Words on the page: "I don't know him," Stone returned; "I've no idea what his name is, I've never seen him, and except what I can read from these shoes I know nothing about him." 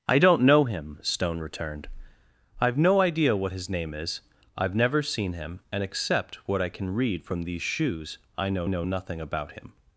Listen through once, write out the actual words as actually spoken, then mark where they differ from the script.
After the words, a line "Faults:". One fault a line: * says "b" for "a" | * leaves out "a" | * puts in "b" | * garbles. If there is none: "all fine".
"I don't know him," Stone returned; "I've no idea what his name is, I've never seen him, and except what I can read from these shoes I know know nothing about him."
Faults:
* puts in "know"